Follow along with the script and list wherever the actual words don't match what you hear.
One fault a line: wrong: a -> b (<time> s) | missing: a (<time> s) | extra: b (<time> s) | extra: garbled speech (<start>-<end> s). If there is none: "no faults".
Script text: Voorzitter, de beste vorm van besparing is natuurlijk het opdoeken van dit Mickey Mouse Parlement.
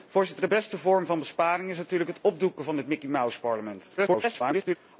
extra: garbled speech (4.0-4.8 s)